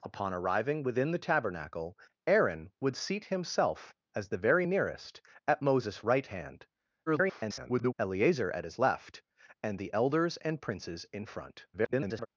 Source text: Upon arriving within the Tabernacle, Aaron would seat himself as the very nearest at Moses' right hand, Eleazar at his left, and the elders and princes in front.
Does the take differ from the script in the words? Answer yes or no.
yes